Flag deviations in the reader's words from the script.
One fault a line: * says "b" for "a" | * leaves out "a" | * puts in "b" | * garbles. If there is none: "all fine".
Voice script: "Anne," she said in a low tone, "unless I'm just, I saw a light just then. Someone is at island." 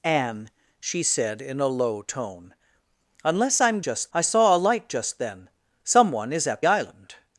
all fine